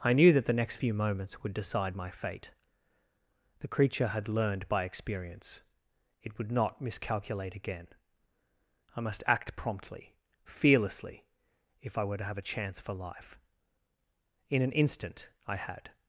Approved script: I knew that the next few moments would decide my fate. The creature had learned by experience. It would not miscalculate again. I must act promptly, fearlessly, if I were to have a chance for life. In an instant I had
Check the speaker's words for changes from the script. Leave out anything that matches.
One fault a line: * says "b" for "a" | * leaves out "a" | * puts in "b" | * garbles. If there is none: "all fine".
all fine